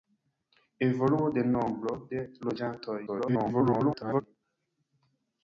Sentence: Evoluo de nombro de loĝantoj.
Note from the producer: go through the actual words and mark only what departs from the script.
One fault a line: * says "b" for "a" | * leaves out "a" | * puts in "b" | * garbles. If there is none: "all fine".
* garbles